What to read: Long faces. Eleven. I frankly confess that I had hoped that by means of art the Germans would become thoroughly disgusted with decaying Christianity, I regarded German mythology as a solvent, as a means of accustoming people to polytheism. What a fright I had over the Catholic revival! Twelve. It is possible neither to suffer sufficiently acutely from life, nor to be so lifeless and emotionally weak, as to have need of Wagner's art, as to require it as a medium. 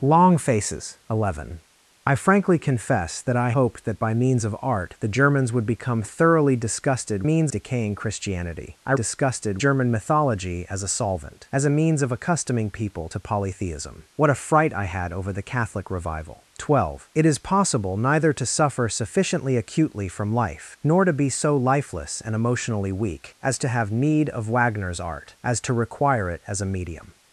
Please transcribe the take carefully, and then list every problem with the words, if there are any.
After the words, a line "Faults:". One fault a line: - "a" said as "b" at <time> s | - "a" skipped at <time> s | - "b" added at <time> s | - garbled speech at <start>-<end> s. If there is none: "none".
Long faces. Eleven. I frankly confess that I hoped that by means of art the Germans would become thoroughly disgusted means decaying Christianity, I disgusted German mythology as a solvent, as a means of accustoming people to polytheism. What a fright I had over the Catholic revival! Twelve. It is possible neither to suffer sufficiently acutely from life, nor to be so lifeless and emotionally weak, as to have need of Wagner's art, as to require it as a medium.
Faults:
- "had" skipped at 3.5 s
- "with" said as "means" at 7.2 s
- "regarded" said as "disgusted" at 8.9 s